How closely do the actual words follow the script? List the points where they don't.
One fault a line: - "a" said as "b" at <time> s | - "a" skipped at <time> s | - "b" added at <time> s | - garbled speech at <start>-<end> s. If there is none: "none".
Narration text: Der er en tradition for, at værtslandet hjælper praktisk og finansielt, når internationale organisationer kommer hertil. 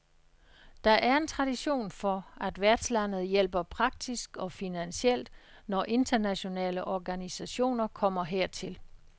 none